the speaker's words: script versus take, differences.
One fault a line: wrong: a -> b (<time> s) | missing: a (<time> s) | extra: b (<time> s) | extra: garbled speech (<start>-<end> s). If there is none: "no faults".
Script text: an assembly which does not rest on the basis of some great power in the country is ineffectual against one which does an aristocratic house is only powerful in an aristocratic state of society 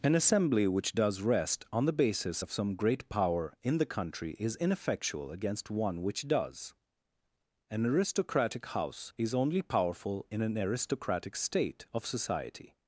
missing: not (1.2 s)